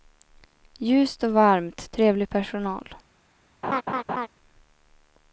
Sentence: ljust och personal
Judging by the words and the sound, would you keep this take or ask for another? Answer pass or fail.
fail